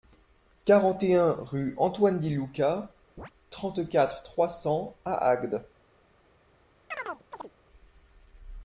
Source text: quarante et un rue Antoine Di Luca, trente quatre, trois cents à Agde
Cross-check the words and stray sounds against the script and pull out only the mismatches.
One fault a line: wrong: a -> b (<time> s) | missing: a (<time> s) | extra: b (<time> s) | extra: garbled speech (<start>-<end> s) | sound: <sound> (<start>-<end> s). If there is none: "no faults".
sound: chirp (3.2-3.3 s)
sound: chirp (6.9-7.5 s)